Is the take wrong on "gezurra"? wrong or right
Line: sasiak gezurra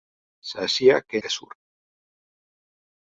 right